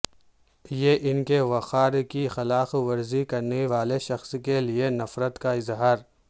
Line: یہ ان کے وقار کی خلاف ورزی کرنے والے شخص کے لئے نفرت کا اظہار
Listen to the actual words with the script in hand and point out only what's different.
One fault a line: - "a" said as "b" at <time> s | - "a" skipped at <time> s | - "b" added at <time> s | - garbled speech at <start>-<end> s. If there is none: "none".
none